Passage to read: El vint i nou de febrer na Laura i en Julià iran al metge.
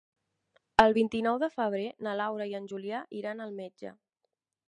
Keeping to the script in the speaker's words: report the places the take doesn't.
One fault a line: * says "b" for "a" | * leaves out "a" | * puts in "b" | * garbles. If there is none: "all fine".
all fine